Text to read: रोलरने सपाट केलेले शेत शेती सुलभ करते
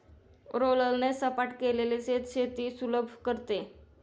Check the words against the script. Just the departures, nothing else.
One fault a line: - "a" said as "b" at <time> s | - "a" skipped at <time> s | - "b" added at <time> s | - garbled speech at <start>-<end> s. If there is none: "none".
none